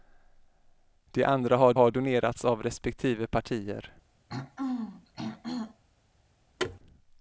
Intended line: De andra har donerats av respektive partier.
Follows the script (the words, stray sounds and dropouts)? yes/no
no